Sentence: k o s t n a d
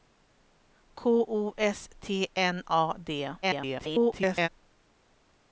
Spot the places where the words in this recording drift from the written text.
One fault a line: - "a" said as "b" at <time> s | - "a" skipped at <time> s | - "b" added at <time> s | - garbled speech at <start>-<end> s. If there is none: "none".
- garbled speech at 3.4-4.5 s